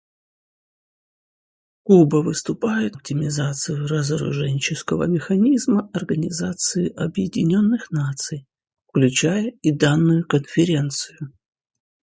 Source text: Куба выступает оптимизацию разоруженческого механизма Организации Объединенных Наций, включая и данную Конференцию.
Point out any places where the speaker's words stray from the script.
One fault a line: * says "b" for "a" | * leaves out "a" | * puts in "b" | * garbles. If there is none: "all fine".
all fine